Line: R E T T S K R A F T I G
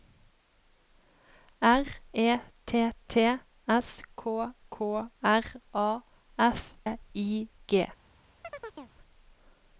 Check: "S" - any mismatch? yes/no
no